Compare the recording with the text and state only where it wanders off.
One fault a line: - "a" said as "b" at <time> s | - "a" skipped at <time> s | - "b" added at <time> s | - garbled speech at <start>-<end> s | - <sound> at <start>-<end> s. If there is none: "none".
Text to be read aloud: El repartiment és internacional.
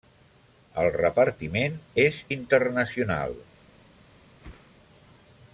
- whoosh at 4.4-4.7 s